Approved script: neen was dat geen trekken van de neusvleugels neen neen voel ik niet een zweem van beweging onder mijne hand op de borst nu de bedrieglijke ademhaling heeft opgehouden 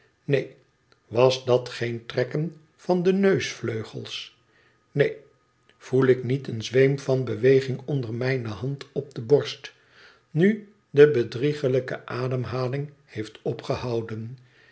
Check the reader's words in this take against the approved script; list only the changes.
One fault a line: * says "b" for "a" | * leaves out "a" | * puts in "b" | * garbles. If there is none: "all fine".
* leaves out "neen"